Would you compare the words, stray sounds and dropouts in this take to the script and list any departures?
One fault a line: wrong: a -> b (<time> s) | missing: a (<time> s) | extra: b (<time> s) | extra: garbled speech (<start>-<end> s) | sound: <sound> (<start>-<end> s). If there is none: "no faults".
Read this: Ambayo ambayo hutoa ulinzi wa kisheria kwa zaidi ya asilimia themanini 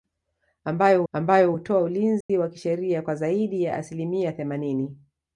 sound: dropout (2.2-2.3 s)